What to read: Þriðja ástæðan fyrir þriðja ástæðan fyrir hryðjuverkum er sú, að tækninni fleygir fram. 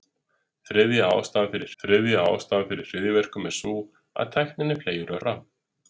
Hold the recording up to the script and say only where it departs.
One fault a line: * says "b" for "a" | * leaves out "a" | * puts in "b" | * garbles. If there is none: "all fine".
all fine